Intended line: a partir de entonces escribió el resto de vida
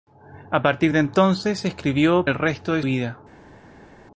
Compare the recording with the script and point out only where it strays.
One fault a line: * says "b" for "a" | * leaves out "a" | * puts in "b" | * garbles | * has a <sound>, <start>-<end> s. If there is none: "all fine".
all fine